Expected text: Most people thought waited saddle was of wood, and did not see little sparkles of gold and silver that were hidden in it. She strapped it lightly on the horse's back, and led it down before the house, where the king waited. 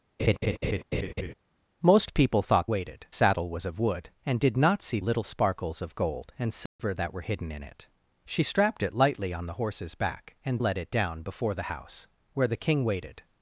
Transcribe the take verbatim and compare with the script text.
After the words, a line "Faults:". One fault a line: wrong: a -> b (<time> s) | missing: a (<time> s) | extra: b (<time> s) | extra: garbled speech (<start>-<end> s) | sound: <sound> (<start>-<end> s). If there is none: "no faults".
Most people thought waited saddle was of wood, and did not see little sparkles of gold and silver that were hidden in it. She strapped it lightly on the horse's back, and led it down before the house, where the king waited.
Faults:
sound: laugh (0.2-1.3 s)
sound: dropout (6.7-6.8 s)